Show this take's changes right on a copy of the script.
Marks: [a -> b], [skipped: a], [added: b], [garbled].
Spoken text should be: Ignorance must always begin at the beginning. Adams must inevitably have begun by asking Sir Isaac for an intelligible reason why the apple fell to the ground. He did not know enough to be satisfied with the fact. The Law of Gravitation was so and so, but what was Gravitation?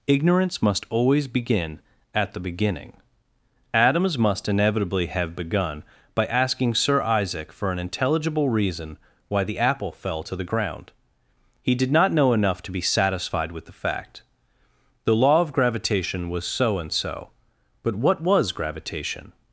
Ignorance must always begin at the beginning. Adams must inevitably have begun by asking Sir Isaac for an intelligible reason why the apple fell to the ground. He did not know enough to be satisfied with the fact. The Law of Gravitation was so and so, but what was Gravitation?